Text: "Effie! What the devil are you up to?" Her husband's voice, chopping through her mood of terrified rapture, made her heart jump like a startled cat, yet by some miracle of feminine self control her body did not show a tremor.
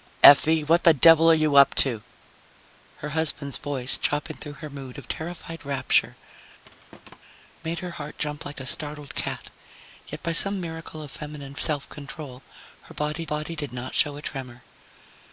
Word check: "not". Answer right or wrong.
right